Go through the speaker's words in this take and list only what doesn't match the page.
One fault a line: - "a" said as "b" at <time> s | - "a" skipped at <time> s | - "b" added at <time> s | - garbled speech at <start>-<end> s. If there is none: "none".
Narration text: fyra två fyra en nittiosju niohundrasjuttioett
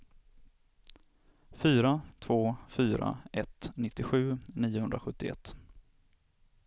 - "en" said as "ett" at 3.3 s